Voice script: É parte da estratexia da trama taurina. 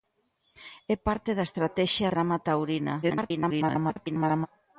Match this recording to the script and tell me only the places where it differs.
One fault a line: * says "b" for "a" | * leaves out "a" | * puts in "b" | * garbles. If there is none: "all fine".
* leaves out "da"
* garbles